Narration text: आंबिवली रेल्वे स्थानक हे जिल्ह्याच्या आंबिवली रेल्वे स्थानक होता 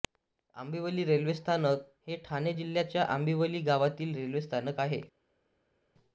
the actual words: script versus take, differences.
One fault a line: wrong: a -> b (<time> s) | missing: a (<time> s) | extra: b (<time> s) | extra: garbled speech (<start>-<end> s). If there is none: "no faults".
extra: ठाणे (2.2 s)
extra: गावातील (3.6 s)
wrong: होता -> आहे (4.8 s)